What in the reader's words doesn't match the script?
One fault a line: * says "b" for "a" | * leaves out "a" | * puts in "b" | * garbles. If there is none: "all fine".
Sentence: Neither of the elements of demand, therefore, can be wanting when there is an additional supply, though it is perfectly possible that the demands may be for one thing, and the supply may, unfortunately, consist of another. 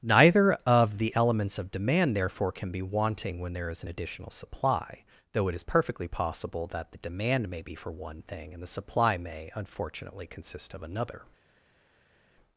* says "demand" for "demands"